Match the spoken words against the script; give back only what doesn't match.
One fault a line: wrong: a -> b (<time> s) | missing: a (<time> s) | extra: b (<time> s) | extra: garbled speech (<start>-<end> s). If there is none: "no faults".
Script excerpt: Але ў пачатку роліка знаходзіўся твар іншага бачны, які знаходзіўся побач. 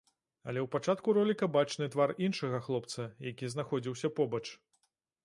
wrong: знаходзіўся -> бачны (1.6 s)
wrong: бачны -> хлопца (2.7 s)